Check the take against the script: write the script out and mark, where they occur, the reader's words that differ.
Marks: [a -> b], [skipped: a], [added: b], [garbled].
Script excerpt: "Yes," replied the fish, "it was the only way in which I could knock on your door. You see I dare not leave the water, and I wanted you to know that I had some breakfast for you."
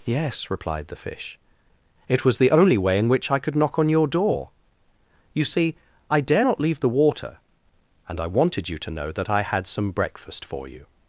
"Yes," replied the fish, "it was the only way in which I could knock on your door. You see I dare not leave the water, and I wanted you to know that I had some breakfast for you."